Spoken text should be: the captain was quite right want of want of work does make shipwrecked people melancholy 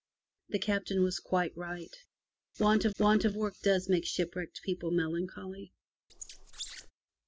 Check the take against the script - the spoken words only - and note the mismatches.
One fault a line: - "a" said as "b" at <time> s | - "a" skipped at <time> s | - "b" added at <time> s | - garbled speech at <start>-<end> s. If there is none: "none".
none